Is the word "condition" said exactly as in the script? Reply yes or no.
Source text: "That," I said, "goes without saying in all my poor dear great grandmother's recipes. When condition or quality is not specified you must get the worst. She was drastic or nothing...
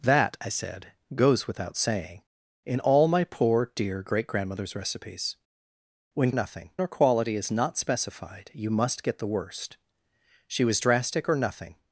no